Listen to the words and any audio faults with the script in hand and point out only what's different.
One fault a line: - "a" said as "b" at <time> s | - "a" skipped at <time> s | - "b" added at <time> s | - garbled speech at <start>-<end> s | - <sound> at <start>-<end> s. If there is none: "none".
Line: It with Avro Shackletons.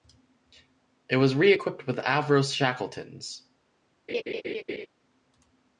- "was re equipped" added at 1.2 s
- laugh at 4.1-4.9 s